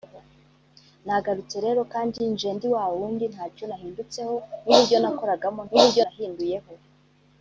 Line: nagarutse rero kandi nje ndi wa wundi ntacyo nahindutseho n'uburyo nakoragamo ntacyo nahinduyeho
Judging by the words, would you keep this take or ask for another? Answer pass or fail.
fail